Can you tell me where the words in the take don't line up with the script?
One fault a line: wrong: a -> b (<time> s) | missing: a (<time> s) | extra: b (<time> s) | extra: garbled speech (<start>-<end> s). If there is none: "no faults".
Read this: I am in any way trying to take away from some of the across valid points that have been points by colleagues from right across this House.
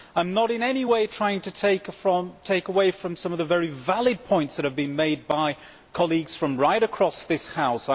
extra: not (0.3 s)
wrong: across -> very (3.5 s)
wrong: points -> made (5.0 s)